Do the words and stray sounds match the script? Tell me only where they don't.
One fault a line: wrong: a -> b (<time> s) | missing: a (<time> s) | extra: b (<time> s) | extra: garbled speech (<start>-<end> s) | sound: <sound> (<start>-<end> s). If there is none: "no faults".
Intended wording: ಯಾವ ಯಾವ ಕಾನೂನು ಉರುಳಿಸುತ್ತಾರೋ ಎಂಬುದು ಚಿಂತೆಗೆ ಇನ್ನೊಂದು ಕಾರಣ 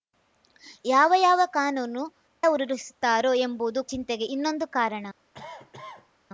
sound: cough (5.3-6.1 s)